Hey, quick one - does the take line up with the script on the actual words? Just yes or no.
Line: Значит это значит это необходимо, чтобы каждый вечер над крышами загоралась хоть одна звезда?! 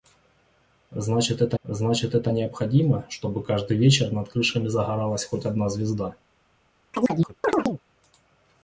yes